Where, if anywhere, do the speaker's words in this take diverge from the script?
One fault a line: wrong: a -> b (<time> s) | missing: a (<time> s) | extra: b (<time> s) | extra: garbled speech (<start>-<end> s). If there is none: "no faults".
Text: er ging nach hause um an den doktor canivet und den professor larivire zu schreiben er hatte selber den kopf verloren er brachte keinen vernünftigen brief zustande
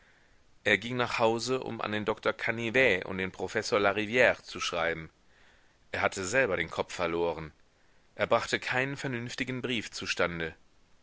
no faults